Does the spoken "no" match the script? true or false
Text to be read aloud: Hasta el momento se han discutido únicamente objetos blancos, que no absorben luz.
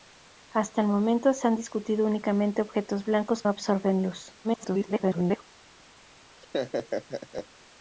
false